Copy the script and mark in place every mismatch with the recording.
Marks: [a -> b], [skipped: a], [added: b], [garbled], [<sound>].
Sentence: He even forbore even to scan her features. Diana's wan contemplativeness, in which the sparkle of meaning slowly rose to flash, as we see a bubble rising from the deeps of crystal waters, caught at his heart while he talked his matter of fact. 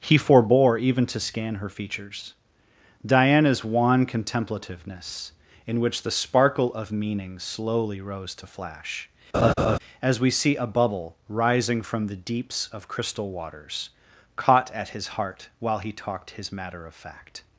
He [skipped: even] forbore even to scan her features. Diana's wan contemplativeness, in which the sparkle of meaning slowly rose to flash, [laugh] as we see a bubble rising from the deeps of crystal waters, caught at his heart while he talked his matter of fact.